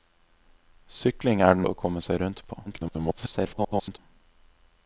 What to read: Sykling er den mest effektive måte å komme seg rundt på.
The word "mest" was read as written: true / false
false